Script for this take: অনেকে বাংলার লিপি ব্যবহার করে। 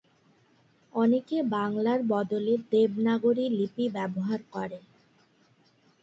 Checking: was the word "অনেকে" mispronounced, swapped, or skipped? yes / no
no